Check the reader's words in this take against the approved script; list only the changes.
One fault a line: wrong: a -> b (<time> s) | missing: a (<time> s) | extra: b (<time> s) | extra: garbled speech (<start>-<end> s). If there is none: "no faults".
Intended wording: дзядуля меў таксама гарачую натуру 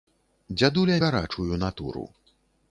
missing: меў таксама (0.9 s)